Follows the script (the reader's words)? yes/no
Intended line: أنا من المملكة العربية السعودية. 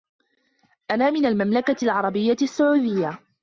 yes